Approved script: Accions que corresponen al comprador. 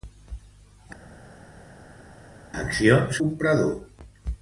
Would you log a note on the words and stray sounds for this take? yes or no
yes